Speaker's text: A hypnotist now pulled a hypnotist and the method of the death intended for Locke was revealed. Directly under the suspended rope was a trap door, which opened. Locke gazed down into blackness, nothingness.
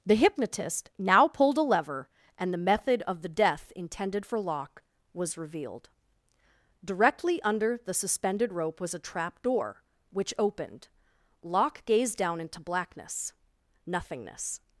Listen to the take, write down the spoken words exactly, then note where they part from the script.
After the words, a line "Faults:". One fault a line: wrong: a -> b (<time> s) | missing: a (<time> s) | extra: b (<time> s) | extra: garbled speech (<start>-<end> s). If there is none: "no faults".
The hypnotist now pulled a lever and the method of the death intended for Locke was revealed. Directly under the suspended rope was a trap door, which opened. Locke gazed down into blackness, nothingness.
Faults:
wrong: A -> The (0.0 s)
wrong: hypnotist -> lever (1.6 s)